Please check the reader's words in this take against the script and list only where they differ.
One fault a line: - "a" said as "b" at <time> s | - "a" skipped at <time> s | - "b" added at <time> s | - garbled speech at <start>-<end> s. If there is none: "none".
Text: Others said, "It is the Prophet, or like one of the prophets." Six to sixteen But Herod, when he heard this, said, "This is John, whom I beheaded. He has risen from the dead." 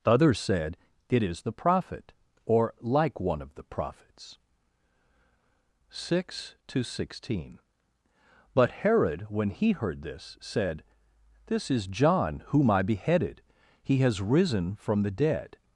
none